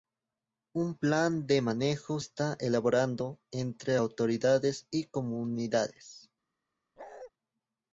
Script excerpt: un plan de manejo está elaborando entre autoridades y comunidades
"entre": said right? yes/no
yes